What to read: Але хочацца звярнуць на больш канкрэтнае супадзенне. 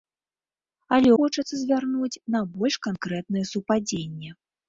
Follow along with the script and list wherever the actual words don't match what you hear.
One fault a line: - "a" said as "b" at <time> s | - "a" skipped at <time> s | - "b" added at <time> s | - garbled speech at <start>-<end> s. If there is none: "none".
none